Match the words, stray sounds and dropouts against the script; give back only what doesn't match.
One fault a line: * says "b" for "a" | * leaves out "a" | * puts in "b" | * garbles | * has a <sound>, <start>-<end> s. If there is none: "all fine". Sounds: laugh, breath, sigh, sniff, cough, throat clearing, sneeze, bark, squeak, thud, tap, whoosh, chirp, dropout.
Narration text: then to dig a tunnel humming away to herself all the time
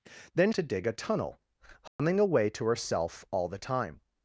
* has a dropout, 1.9-2.0 s